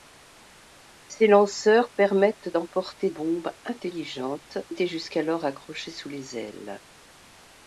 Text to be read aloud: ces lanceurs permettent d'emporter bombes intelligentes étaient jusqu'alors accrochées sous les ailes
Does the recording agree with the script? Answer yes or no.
yes